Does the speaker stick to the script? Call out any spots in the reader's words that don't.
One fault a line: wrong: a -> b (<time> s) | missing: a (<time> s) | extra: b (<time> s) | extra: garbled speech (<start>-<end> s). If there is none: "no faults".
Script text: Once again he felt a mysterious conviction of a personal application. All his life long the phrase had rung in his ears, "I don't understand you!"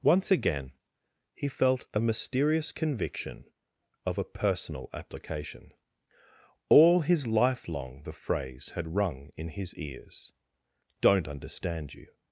missing: I (10.3 s)